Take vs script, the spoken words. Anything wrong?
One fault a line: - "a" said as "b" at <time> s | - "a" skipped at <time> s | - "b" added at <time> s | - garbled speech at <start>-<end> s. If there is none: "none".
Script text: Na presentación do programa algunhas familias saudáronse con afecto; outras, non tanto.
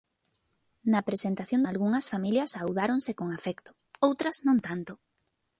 - "do programa" skipped at 1.6 s